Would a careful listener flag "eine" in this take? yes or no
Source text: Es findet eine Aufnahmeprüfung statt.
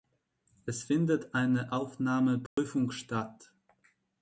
no